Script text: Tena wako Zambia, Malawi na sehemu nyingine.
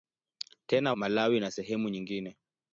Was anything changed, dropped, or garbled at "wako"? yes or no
yes